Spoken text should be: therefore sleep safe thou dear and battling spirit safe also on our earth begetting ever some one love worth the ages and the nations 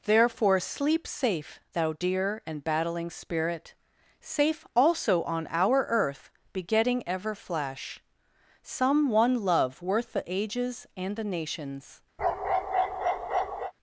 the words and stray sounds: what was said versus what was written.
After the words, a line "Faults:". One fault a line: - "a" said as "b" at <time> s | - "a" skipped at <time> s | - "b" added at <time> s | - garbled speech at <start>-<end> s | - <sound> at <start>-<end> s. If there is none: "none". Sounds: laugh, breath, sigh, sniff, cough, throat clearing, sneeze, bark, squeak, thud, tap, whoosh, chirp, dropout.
therefore sleep safe thou dear and battling spirit safe also on our earth begetting ever flash some one love worth the ages and the nations
Faults:
- "flash" added at 7.3 s
- bark at 12.2-13.7 s